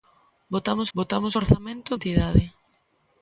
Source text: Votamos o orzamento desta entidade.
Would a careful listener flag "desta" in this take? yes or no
yes